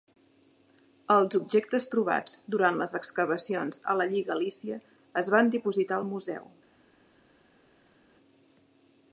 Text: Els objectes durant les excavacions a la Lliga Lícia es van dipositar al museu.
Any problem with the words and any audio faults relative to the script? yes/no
yes